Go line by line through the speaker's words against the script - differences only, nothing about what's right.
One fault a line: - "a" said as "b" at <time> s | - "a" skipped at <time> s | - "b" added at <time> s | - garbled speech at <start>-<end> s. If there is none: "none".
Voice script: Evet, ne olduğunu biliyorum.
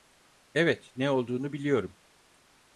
none